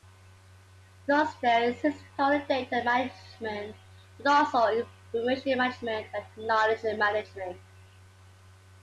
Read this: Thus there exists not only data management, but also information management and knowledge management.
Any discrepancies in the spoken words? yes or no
yes